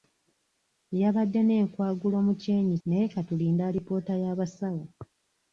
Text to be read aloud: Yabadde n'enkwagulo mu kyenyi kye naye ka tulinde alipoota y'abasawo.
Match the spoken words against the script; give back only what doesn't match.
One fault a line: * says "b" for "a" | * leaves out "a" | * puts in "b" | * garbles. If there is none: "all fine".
* leaves out "kye"